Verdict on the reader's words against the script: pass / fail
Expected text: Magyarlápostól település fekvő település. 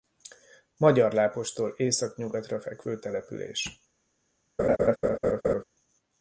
fail